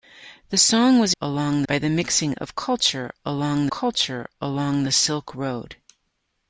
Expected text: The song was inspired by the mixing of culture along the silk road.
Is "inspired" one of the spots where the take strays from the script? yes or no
yes